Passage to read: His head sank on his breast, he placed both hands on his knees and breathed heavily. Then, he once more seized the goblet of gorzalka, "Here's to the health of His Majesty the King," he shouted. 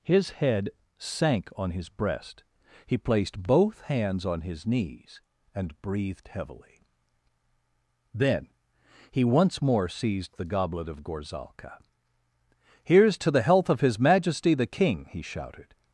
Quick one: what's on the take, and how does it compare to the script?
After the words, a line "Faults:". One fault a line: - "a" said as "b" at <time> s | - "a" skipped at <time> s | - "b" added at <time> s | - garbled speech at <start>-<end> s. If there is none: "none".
His head sank on his breast, he placed both hands on his knees and breathed heavily. Then, he once more seized the goblet of gorzalka, "Here's to the health of His Majesty the King," he shouted.
Faults:
none